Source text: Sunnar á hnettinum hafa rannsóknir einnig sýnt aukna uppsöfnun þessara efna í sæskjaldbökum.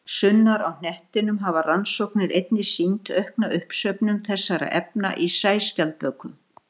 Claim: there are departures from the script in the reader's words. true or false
false